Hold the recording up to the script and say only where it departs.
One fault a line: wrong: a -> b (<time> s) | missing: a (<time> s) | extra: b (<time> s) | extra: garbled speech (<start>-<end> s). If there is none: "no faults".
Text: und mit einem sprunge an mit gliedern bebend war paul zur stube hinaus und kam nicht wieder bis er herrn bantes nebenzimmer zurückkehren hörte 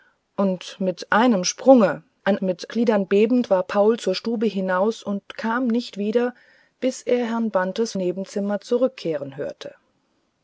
no faults